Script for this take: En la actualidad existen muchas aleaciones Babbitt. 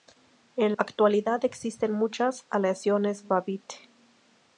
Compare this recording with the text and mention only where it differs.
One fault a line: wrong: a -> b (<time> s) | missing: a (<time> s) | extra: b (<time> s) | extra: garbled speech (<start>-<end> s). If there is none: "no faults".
missing: la (0.7 s)